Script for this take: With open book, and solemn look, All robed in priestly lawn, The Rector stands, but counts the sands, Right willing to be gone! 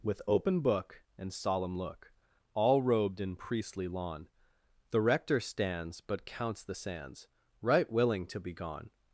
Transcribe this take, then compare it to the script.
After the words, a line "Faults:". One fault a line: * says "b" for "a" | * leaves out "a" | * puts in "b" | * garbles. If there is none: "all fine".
With open book, and solemn look, All robed in priestly lawn, The Rector stands, but counts the sands, Right willing to be gone!
Faults:
all fine